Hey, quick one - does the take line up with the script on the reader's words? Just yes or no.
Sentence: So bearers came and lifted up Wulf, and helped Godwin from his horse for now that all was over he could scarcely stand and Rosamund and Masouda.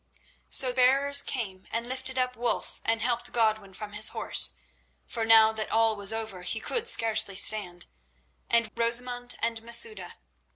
yes